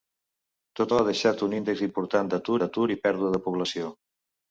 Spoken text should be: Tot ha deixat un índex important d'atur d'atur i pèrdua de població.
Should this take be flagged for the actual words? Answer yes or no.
no